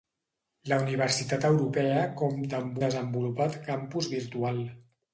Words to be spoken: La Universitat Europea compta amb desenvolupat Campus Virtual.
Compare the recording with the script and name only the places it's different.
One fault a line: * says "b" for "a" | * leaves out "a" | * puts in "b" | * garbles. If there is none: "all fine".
all fine